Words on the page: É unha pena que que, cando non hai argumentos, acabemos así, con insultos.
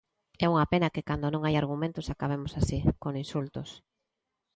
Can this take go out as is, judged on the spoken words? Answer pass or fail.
fail